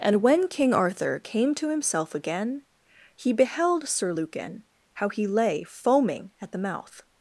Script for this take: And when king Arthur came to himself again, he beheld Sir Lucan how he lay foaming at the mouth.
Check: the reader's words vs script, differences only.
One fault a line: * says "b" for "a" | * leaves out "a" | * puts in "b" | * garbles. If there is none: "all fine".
all fine